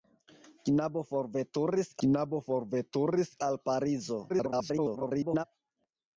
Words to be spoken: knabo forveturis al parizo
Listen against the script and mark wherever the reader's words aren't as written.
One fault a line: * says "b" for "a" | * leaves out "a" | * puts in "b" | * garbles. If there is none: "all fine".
* puts in "knabo forveturis"
* garbles